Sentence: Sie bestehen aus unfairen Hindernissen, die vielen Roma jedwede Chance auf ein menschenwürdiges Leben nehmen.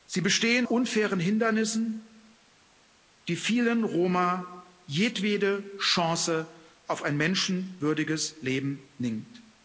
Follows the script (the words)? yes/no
no